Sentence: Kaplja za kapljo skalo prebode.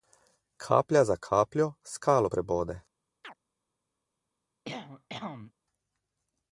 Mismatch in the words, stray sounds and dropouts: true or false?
true